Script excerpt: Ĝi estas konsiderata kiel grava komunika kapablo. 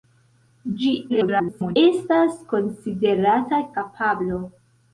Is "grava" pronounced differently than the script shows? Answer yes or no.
yes